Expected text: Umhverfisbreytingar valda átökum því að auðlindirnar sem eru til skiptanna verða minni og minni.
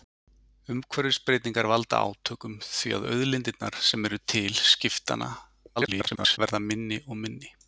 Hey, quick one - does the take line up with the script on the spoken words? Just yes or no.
no